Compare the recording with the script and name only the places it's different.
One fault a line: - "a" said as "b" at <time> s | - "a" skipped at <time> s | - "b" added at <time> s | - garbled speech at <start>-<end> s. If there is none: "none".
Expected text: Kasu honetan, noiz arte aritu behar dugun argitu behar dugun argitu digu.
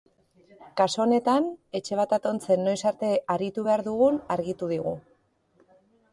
- "etxe bat atontzen" added at 1.8 s
- "behar dugun argitu" skipped at 4.7 s